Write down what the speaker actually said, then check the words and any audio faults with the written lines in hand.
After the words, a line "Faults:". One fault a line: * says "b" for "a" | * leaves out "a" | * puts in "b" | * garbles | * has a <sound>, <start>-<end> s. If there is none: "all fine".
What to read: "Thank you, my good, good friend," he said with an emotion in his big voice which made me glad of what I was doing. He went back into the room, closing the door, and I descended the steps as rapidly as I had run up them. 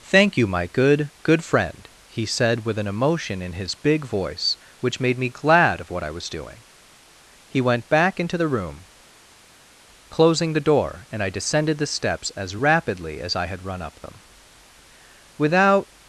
"Thank you, my good, good friend," he said with an emotion in his big voice which made me glad of what I was doing. He went back into the room, closing the door, and I descended the steps as rapidly as I had run up them. Without
Faults:
* puts in "Without"